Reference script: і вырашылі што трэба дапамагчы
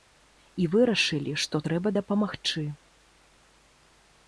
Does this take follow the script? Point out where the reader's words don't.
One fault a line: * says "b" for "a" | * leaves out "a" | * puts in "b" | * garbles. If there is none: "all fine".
all fine